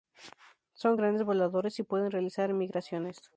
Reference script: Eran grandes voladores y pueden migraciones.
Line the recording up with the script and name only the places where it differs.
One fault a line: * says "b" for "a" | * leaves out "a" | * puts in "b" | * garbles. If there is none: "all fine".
* says "Son" for "Eran"
* puts in "realizar"